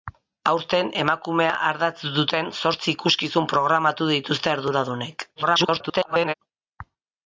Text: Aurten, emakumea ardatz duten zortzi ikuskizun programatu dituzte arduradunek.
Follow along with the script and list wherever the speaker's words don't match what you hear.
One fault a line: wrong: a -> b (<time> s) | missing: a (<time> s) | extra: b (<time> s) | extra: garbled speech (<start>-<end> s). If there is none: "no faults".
extra: garbled speech (5.4-6.3 s)